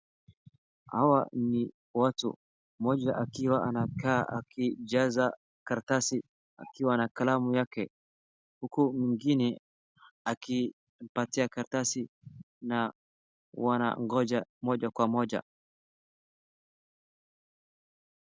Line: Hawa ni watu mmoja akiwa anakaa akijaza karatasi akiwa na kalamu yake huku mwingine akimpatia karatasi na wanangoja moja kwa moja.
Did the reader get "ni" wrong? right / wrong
right